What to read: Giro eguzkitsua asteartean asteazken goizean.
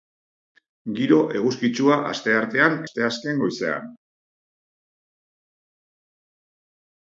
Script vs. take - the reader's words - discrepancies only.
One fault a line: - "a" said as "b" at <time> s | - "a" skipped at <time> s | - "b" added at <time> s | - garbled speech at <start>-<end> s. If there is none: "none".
none